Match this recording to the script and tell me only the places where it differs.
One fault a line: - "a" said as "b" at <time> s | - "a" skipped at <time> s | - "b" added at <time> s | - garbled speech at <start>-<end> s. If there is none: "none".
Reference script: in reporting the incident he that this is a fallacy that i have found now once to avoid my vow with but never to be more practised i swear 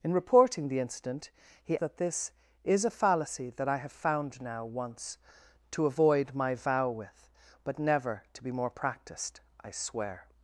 none